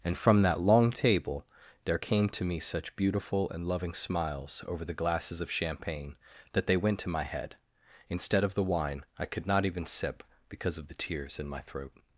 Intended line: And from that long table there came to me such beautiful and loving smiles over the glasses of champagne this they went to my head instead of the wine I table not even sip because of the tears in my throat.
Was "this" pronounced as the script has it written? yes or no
no